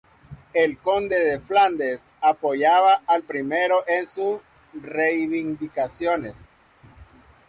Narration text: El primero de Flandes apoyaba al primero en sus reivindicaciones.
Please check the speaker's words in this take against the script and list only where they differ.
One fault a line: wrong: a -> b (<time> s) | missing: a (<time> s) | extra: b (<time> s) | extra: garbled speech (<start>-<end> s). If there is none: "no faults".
wrong: primero -> conde (0.8 s)